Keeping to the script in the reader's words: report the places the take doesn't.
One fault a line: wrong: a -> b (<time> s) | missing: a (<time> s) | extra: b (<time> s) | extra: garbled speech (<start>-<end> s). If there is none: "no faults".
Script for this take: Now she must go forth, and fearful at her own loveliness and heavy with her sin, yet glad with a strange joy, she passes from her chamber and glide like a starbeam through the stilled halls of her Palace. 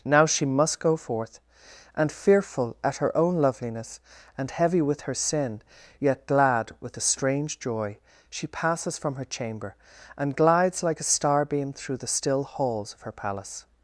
wrong: glide -> glides (10.3 s)
wrong: stilled -> still (12.1 s)